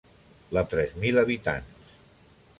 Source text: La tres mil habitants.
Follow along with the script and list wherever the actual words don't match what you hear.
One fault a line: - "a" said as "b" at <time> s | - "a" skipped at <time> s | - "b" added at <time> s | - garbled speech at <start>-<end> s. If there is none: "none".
none